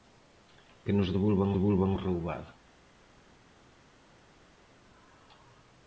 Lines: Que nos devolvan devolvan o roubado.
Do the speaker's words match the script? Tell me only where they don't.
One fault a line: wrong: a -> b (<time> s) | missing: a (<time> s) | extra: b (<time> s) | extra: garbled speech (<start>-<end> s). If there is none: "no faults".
no faults